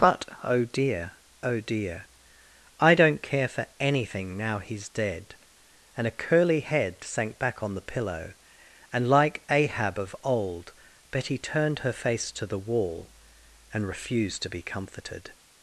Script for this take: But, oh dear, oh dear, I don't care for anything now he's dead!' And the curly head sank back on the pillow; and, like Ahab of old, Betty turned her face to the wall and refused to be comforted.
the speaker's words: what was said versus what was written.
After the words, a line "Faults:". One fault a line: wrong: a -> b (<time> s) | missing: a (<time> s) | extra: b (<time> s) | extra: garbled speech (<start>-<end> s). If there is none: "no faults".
But, oh dear, oh dear, I don't care for anything now he's dead!' And a curly head sank back on the pillow; and, like Ahab of old, Betty turned her face to the wall and refused to be comforted.
Faults:
wrong: the -> a (6.1 s)